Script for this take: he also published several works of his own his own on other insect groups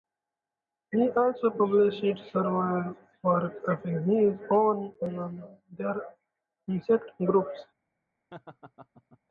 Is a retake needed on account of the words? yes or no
yes